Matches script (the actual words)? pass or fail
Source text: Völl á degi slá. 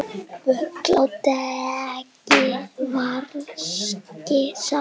fail